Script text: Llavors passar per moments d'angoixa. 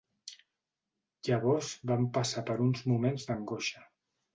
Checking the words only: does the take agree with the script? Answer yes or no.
no